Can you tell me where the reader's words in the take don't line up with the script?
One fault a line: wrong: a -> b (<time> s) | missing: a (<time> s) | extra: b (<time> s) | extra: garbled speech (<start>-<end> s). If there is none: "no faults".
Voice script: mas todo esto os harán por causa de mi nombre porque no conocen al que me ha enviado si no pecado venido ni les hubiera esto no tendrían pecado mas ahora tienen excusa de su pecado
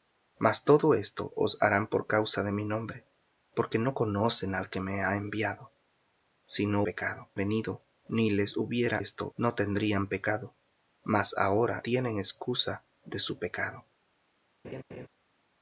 no faults